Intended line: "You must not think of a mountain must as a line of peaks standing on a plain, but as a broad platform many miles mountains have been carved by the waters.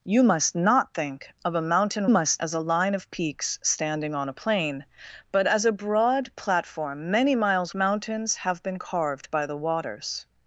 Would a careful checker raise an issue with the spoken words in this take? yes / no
no